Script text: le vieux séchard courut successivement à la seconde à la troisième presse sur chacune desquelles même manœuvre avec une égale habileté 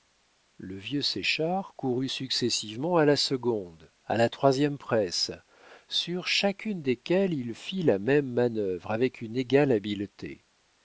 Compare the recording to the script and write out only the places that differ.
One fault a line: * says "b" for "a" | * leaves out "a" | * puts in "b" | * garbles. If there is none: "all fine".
* puts in "il fit la"